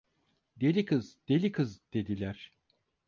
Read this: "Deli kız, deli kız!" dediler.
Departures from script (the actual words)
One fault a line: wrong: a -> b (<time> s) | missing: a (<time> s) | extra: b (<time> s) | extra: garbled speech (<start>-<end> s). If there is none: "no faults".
no faults